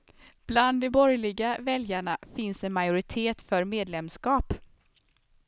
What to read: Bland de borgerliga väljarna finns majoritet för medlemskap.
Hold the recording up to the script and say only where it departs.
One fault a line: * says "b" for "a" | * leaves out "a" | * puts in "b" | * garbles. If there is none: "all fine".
* puts in "en"